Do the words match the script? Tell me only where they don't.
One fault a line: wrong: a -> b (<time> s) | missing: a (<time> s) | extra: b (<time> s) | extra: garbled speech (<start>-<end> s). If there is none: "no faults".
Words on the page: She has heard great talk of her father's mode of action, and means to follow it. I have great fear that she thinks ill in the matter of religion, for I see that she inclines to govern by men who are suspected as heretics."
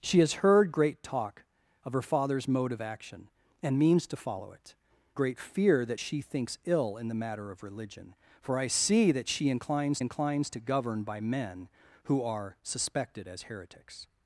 missing: I have (4.8 s)
extra: inclines (10.0 s)